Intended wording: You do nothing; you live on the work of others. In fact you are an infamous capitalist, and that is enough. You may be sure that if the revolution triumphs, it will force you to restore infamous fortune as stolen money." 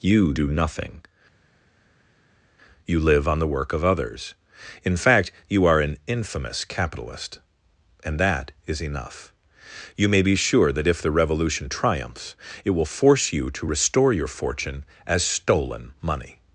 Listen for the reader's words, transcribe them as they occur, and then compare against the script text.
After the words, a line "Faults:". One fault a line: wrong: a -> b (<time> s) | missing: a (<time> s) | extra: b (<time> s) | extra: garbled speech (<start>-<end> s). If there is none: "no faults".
You do nothing; you live on the work of others. In fact you are an infamous capitalist, and that is enough. You may be sure that if the revolution triumphs, it will force you to restore your fortune as stolen money."
Faults:
wrong: infamous -> your (14.1 s)